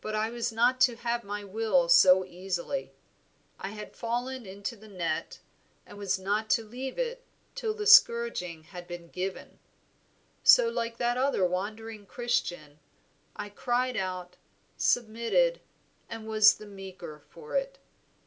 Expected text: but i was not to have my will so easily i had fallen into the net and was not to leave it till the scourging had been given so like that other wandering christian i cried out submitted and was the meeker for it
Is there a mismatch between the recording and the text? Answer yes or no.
no